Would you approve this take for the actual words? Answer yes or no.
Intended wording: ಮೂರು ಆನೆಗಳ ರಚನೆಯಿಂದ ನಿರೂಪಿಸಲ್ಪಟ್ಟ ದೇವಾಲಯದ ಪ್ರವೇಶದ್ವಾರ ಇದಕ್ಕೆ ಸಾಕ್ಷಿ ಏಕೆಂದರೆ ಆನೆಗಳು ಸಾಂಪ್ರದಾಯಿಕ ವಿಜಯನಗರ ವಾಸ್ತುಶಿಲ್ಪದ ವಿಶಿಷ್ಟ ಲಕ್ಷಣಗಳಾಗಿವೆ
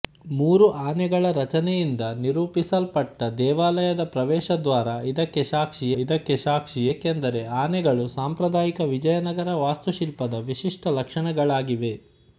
no